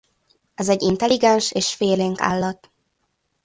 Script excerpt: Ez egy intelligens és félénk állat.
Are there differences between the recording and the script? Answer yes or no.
no